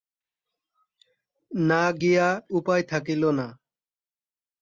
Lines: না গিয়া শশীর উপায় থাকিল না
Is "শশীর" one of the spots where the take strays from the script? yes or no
yes